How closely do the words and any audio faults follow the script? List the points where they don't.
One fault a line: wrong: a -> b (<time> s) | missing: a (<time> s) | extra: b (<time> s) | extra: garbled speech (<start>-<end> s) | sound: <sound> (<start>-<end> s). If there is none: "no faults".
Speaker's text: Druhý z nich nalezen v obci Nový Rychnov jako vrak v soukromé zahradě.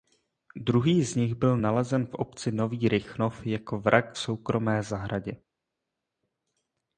extra: byl (1.4 s)